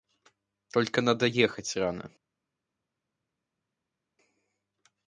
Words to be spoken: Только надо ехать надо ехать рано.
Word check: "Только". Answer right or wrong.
right